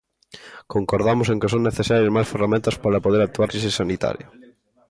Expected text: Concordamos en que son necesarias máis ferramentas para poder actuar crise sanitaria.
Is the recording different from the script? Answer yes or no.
no